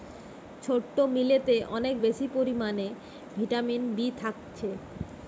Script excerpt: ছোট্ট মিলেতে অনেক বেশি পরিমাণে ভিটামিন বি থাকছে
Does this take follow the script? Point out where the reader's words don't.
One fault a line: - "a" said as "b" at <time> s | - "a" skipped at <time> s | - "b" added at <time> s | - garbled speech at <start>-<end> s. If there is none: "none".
none